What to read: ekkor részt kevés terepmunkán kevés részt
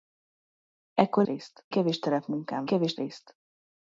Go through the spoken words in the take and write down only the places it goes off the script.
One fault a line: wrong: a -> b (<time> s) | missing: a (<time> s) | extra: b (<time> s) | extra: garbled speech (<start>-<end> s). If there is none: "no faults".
no faults